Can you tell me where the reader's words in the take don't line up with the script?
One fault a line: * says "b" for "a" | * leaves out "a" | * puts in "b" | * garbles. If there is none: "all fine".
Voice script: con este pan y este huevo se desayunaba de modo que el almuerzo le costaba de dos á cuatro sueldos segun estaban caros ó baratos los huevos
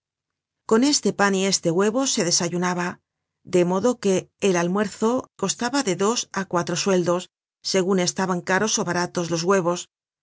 * leaves out "le"